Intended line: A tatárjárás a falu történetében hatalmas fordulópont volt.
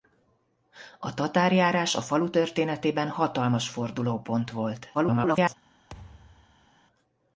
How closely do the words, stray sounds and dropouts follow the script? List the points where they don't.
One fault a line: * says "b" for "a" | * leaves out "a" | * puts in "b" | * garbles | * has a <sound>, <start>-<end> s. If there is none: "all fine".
* garbles
* has a thud, 5.9-6.7 s